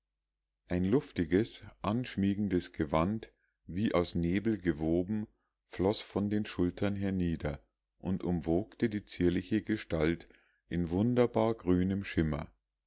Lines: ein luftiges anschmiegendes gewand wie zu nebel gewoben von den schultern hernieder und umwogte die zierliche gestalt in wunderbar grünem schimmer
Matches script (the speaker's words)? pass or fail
fail